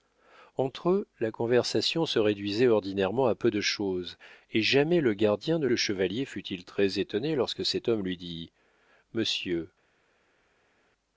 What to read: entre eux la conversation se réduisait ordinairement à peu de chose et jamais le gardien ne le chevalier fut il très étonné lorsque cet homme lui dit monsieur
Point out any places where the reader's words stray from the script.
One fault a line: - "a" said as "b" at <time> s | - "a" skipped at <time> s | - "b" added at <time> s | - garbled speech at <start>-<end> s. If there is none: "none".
none